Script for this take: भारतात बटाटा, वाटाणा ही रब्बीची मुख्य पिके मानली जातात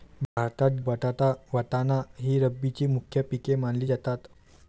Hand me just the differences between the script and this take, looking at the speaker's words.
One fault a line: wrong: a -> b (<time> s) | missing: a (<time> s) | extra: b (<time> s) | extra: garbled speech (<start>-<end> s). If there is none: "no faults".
no faults